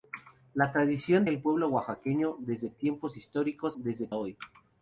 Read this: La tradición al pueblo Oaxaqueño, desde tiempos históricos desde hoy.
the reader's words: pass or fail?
pass